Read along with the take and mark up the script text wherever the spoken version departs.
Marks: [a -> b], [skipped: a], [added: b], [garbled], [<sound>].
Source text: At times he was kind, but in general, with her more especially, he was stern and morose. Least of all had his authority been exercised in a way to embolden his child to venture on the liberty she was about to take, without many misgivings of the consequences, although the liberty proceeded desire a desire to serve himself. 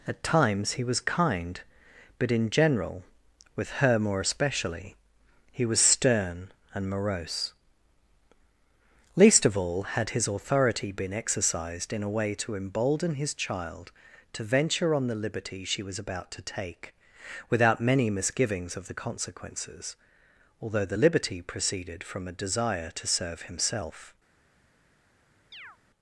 At times he was kind, but in general, with her more especially, he was stern and morose. Least of all had his authority been exercised in a way to embolden his child to venture on the liberty she was about to take, without many misgivings of the consequences, although the liberty proceeded [desire -> from] a desire to serve himself. [chirp]